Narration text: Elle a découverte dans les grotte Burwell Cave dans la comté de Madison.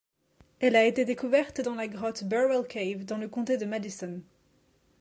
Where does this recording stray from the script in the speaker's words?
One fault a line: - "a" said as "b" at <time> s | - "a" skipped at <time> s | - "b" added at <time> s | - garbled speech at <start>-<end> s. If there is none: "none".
- "été" added at 0.8 s
- "les" said as "la" at 1.7 s
- "la" said as "le" at 3.2 s